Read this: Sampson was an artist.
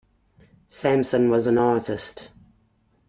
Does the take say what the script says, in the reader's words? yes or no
yes